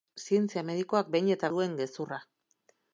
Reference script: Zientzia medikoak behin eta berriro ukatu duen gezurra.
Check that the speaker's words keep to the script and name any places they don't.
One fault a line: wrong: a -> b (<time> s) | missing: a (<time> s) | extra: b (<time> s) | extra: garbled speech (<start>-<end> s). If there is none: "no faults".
missing: berriro ukatu (1.5 s)